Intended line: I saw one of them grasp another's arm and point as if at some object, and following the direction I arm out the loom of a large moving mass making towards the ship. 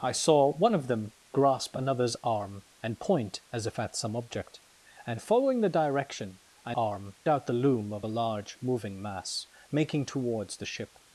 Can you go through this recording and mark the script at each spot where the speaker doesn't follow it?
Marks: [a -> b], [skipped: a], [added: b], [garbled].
I saw one of them grasp another's arm and point as if at some object, and following the direction I arm out the loom of a large moving mass making towards the ship.